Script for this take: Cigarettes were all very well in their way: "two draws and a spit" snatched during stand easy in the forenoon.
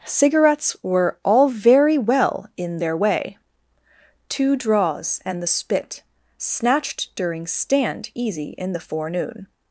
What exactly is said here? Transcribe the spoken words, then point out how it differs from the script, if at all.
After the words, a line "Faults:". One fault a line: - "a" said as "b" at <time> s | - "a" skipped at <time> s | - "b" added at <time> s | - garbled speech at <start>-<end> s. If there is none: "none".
Cigarettes were all very well in their way: "two draws and the spit" snatched during stand easy in the forenoon.
Faults:
- "a" said as "the" at 5.4 s